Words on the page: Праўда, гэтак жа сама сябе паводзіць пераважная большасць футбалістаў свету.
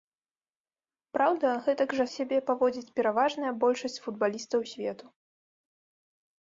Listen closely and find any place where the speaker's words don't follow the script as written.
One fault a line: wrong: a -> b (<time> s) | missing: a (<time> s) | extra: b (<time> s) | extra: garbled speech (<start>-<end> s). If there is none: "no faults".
missing: сама (2.0 s)